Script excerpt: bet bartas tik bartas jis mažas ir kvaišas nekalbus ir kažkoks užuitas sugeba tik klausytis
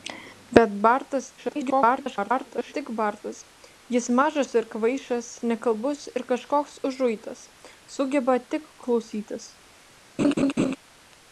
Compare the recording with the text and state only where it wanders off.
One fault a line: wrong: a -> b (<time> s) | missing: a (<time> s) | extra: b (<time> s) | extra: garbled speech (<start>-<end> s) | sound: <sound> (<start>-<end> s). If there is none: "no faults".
extra: garbled speech (1.4-2.7 s)
sound: laugh (10.2-10.8 s)